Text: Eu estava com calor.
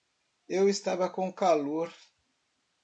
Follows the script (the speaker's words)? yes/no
yes